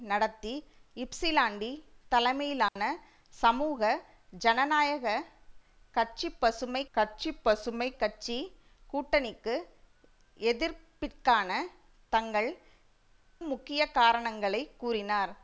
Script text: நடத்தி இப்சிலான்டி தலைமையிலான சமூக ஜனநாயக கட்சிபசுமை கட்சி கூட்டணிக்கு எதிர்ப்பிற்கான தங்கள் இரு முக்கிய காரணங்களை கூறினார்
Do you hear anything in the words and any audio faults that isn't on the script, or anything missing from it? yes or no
yes